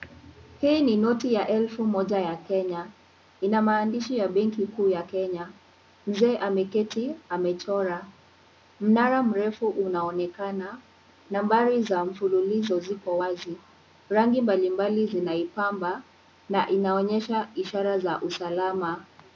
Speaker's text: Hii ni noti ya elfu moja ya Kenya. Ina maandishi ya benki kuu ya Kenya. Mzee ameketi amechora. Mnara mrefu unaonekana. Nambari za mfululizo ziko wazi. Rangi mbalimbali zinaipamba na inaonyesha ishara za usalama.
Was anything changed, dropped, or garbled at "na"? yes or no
no